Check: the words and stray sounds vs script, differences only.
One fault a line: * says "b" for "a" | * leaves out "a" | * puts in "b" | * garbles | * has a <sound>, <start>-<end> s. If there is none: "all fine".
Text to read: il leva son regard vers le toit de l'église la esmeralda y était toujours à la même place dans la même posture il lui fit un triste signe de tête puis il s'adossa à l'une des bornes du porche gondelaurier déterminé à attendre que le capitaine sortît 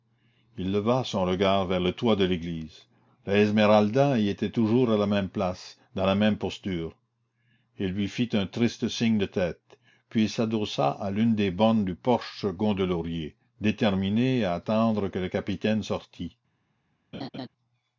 * has a laugh, 17.1-17.5 s